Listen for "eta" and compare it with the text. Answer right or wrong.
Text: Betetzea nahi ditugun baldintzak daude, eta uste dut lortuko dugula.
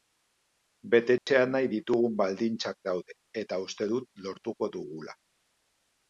right